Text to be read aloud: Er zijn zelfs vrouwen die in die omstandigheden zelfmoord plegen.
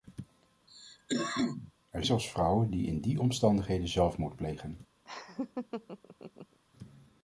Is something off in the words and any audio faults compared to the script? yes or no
yes